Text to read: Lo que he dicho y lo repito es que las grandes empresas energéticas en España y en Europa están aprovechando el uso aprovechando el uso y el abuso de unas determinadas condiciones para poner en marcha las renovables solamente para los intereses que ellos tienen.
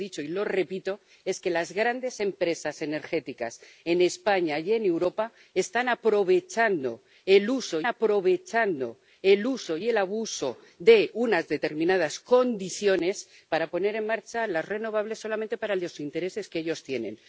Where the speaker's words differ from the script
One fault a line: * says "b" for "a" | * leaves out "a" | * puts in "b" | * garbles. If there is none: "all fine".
all fine